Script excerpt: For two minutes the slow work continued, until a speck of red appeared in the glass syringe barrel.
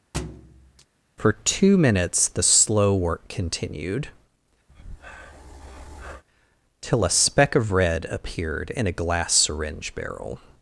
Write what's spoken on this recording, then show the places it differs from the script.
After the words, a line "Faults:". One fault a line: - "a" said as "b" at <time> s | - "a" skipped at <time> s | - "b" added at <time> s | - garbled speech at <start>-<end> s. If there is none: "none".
For two minutes the slow work continued, till a speck of red appeared in a glass syringe barrel.
Faults:
- "until" said as "till" at 6.8 s
- "the" said as "a" at 8.9 s